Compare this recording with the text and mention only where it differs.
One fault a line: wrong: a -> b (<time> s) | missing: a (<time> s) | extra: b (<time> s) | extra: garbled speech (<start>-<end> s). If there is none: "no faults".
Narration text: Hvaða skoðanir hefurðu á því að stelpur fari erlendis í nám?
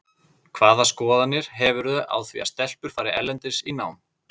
no faults